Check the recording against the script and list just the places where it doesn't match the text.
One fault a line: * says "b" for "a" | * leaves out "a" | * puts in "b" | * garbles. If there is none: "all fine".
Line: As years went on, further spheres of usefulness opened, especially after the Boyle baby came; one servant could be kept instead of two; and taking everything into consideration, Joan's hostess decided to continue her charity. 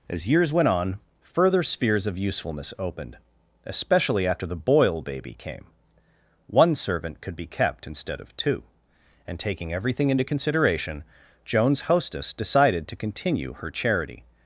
all fine